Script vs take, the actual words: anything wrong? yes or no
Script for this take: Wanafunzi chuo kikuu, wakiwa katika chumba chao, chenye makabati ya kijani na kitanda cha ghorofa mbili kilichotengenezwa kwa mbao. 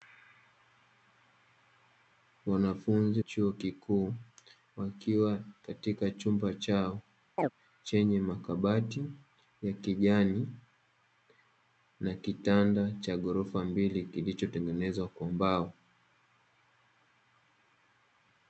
no